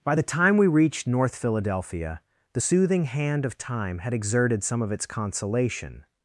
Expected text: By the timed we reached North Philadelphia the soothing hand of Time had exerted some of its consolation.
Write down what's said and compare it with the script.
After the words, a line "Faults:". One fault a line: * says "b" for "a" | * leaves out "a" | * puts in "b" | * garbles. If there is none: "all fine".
By the time we reached North Philadelphia the soothing hand of Time had exerted some of its consolation.
Faults:
* says "time" for "timed"